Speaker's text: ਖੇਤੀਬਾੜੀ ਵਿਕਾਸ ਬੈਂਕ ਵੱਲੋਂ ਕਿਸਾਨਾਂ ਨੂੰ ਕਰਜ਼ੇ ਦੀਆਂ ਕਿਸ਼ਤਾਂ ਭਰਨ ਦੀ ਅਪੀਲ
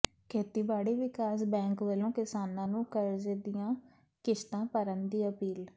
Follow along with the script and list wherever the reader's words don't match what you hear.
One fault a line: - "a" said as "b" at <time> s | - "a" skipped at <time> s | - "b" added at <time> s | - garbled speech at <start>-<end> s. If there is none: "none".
none